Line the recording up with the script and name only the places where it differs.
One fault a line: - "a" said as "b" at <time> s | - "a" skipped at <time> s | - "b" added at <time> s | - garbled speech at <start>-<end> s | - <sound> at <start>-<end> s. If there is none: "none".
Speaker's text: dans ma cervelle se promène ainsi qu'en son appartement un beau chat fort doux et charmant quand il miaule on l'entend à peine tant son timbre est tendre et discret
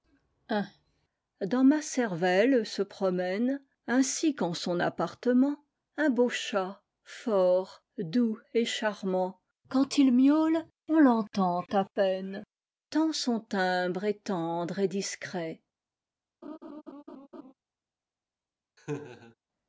- laugh at 16.4-17.5 s
- laugh at 18.8-19.3 s